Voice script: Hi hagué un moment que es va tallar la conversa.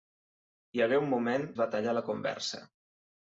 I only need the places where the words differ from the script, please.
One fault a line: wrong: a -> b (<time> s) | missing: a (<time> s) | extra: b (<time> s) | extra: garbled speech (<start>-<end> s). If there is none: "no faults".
missing: que (1.5 s)